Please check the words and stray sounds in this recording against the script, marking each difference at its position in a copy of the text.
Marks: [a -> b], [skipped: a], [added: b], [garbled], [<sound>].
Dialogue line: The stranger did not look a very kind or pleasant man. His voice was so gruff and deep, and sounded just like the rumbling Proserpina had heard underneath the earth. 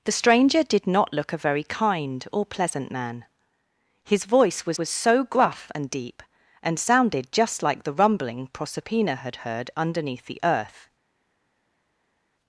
The stranger did not look a very kind or pleasant man. His voice was [added: was] so gruff and deep, and sounded just like the rumbling Proserpina had heard underneath the earth.